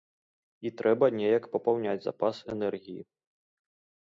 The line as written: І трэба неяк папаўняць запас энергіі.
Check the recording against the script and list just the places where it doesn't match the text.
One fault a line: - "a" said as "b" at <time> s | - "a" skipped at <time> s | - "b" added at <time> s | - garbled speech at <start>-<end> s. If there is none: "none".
none